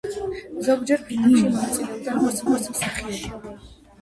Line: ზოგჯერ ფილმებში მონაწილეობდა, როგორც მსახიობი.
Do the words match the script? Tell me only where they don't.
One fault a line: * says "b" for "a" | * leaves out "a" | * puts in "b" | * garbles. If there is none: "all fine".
* puts in "როგორც"